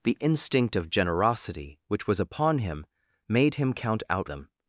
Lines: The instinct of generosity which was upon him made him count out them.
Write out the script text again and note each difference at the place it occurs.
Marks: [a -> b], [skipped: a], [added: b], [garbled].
The instinct of generosity which was upon him made him count out them.